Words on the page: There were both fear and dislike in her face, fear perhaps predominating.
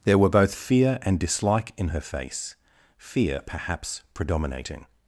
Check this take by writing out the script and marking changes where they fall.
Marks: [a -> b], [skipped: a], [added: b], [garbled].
There were both fear and dislike in her face, fear perhaps predominating.